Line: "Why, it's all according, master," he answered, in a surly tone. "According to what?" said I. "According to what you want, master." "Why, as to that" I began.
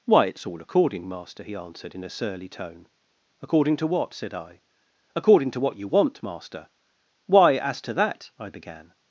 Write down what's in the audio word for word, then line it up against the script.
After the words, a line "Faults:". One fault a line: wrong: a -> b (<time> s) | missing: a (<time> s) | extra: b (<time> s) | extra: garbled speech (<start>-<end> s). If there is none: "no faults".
"Why, it's all according, master," he answered, in a surly tone. "According to what?" said I. "According to what you want, master." "Why, as to that" I began.
Faults:
no faults